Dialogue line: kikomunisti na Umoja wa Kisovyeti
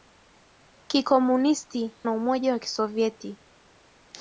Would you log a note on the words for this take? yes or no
no